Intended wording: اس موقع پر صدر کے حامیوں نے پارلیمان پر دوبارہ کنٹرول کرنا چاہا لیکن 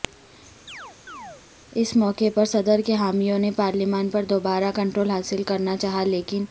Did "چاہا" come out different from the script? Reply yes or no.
no